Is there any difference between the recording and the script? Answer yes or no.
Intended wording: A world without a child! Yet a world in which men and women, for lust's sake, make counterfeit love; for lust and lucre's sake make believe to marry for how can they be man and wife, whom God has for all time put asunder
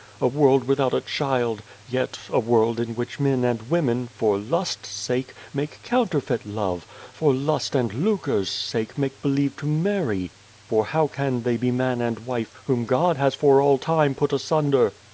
no